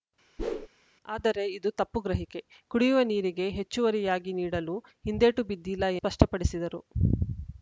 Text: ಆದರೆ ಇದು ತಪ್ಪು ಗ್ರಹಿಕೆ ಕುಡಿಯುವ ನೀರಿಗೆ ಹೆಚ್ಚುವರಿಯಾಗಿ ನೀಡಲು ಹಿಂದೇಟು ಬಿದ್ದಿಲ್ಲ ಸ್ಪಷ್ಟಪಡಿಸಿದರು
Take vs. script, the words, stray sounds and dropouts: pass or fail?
fail